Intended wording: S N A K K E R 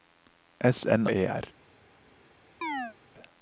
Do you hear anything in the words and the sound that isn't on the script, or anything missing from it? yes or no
yes